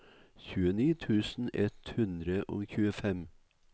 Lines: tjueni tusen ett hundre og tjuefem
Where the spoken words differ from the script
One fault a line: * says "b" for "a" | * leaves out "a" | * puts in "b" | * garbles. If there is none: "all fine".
all fine